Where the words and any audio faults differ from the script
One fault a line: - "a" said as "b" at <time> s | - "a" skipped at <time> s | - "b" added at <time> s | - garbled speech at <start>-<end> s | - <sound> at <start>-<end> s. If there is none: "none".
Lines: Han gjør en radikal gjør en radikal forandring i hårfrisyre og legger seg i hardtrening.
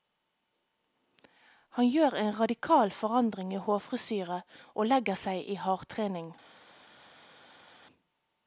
- "gjør en radikal" skipped at 2.9 s